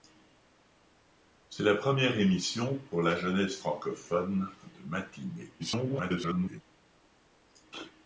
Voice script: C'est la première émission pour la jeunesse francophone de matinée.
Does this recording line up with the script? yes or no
no